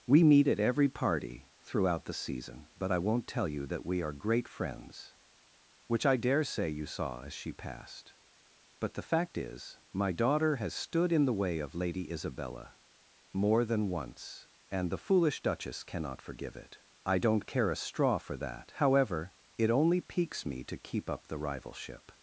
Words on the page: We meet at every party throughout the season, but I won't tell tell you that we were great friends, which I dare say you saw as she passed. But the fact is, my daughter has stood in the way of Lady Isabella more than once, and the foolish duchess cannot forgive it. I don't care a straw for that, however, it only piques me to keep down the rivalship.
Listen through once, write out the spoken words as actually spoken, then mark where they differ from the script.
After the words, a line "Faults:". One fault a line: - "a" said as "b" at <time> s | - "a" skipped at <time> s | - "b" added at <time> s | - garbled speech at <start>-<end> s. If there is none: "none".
We meet at every party throughout the season, but I won't tell you that we are great friends, which I dare say you saw as she passed. But the fact is, my daughter has stood in the way of Lady Isabella more than once, and the foolish duchess cannot forgive it. I don't care a straw for that, however, it only piques me to keep up the rivalship.
Faults:
- "tell" skipped at 3.5 s
- "were" said as "are" at 4.0 s
- "down" said as "up" at 21.1 s